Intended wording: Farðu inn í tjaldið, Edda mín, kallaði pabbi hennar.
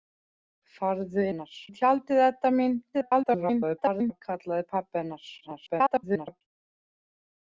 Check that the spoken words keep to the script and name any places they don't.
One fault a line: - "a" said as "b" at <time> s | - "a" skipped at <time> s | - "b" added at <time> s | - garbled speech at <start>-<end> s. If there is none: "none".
- "inn" said as "hennar" at 1.3 s
- garbled speech at 2.9-4.2 s
- garbled speech at 5.4-6.4 s